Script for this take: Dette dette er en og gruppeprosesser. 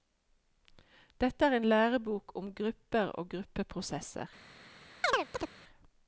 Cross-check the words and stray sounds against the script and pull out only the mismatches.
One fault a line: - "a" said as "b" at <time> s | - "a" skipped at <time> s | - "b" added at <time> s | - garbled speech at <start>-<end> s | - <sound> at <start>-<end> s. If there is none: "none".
- "dette" skipped at 1.4 s
- "lærebok om grupper" added at 1.6 s
- chirp at 5.0-5.5 s